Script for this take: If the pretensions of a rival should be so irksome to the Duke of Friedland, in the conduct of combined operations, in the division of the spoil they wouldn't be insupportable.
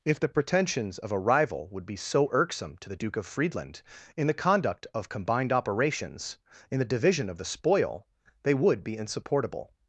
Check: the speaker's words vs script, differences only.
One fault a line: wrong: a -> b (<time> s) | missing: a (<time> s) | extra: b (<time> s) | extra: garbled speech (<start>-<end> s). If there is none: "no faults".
wrong: should -> would (1.7 s)
wrong: wouldn't -> would (8.5 s)